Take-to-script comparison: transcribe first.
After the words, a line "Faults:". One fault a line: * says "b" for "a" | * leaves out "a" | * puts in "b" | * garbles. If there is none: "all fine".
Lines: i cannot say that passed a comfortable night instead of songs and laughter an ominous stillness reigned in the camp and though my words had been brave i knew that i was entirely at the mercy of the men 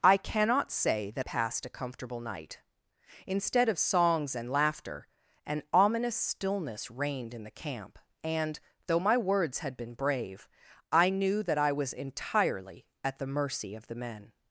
i cannot say that passed a comfortable night instead of songs and laughter an ominous stillness reigned in the camp and though my words had been brave i knew that i was entirely at the mercy of the men
Faults:
all fine